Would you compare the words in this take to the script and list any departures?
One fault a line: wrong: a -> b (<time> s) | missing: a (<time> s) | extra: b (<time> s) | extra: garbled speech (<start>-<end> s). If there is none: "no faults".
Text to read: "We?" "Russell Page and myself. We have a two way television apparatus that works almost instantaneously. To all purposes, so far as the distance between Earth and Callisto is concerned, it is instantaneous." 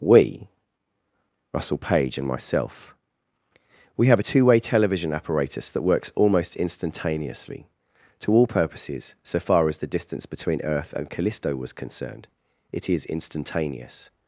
wrong: is -> was (11.5 s)